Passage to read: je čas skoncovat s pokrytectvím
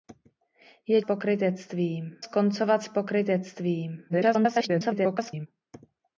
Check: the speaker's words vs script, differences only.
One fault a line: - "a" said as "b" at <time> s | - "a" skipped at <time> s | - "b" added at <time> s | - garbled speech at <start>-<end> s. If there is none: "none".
- "čas" said as "pokrytectvím" at 1.0 s
- garbled speech at 4.1-5.5 s